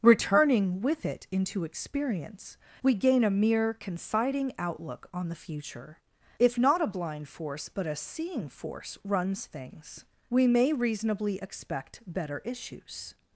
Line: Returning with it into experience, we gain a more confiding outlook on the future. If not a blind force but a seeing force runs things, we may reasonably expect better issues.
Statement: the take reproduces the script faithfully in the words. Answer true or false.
false